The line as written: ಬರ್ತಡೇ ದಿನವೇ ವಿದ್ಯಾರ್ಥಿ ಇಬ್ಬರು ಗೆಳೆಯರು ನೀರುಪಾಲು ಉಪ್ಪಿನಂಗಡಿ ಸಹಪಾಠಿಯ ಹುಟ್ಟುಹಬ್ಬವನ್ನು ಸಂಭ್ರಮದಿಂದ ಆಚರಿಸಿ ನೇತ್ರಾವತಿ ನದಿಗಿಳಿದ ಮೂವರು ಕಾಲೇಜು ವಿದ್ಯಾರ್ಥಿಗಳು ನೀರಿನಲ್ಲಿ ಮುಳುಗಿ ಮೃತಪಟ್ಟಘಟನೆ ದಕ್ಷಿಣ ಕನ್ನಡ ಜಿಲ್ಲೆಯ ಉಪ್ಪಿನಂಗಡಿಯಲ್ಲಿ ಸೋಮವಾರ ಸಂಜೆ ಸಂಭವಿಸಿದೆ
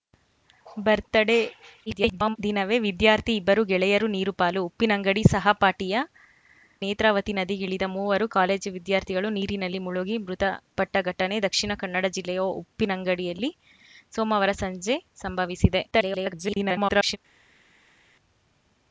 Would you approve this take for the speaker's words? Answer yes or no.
no